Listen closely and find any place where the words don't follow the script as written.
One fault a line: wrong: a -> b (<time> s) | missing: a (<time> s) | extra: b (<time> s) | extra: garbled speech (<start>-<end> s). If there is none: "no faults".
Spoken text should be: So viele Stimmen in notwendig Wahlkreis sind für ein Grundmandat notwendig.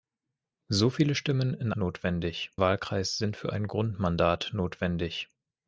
no faults